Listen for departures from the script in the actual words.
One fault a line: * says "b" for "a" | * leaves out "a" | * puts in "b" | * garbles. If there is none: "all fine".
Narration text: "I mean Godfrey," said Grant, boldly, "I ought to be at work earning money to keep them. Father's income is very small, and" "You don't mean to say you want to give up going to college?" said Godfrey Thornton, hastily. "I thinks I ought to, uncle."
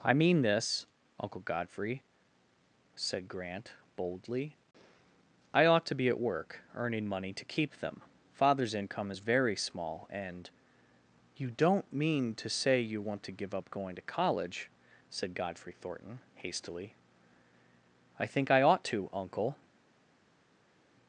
* puts in "this Uncle"
* says "think" for "thinks"